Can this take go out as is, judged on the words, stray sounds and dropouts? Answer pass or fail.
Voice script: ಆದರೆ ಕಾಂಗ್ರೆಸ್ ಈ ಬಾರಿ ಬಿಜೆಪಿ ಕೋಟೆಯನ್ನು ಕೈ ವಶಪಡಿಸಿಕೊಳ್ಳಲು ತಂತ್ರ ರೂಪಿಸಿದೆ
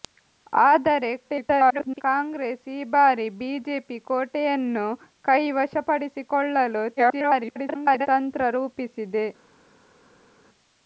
fail